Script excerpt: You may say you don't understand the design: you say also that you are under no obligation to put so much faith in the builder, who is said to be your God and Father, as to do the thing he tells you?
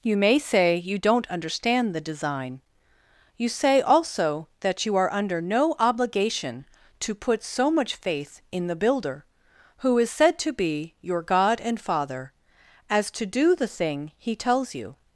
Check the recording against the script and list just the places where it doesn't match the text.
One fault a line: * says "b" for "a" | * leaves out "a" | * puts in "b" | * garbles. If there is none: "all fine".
all fine